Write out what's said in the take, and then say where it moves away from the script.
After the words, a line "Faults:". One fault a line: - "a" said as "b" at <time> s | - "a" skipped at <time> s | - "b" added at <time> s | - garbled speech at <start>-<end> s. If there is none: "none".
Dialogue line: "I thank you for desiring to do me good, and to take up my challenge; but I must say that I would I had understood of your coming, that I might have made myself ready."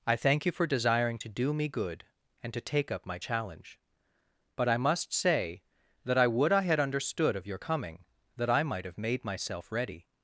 "I thank you for desiring to do me good, and to take up my challenge; but I must say that I would I had understood of your coming, that I might have made myself ready."
Faults:
none